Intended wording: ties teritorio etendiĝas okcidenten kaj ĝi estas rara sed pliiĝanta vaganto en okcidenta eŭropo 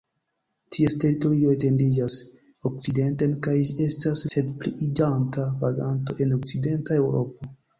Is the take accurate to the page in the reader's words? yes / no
no